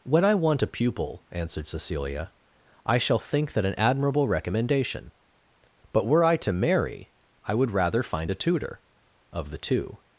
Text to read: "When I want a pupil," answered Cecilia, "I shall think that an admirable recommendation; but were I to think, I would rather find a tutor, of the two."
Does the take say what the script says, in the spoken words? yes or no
no